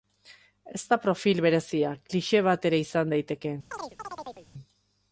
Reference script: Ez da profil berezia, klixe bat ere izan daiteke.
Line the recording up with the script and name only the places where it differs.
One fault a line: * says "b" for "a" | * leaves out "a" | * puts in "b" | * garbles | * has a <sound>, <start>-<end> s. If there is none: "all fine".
* has a chirp, 3.7-4.5 s